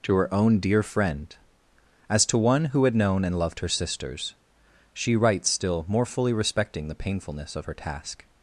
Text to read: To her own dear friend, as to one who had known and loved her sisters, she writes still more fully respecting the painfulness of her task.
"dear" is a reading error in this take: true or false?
false